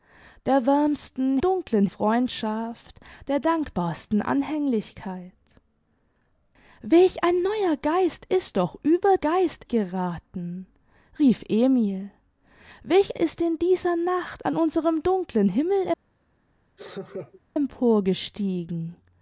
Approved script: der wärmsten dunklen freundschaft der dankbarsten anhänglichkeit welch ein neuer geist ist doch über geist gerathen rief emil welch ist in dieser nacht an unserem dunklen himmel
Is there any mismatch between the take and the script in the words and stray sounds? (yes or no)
yes